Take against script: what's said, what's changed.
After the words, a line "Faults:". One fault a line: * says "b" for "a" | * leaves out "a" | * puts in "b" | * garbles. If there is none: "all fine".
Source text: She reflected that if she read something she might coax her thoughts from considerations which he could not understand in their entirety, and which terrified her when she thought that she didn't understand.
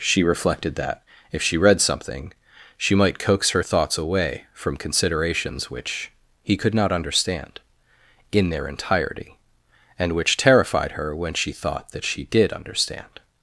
She reflected that if she read something she might coax her thoughts away from considerations which he could not understand in their entirety, and which terrified her when she thought that she did understand.
Faults:
* puts in "away"
* says "did" for "didn't"